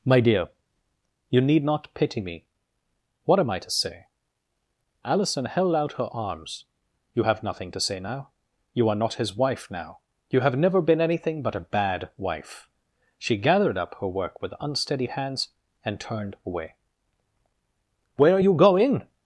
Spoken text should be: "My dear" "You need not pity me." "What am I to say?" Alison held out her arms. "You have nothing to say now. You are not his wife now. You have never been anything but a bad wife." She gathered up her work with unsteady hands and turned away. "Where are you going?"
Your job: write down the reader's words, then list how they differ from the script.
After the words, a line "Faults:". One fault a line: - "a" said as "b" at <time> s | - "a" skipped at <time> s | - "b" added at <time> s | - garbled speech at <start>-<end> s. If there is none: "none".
"My dear" "You need not pity me." "What am I to say?" Alison held out her arms. "You have nothing to say now. You are not his wife now. You have never been anything but a bad wife." She gathered up her work with unsteady hands and turned away. "Where are you going?"
Faults:
none